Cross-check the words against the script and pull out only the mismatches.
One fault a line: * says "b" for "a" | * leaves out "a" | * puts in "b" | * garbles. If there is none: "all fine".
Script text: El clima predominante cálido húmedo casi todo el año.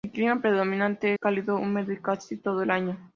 all fine